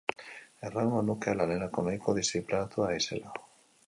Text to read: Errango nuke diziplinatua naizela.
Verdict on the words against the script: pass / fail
fail